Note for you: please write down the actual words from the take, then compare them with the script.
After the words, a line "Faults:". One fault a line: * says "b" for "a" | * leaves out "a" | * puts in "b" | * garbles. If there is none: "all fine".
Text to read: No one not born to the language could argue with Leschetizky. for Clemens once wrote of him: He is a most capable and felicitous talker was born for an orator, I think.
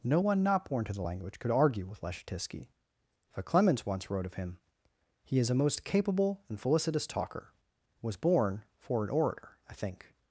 No one not born to the language could argue with Leschetizky. for Clemens once wrote of him: He is a most capable and felicitous talker was born for an orator, I think.
Faults:
all fine